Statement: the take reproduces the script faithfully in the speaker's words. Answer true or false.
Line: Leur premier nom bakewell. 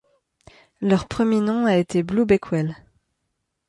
false